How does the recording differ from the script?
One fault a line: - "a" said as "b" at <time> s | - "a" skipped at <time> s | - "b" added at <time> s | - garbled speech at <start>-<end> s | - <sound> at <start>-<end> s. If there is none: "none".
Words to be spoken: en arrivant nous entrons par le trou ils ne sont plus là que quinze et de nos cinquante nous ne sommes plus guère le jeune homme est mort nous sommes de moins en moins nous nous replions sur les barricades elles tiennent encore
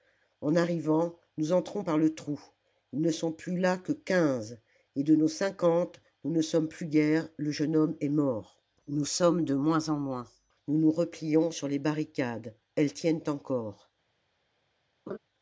- laugh at 15.1-15.2 s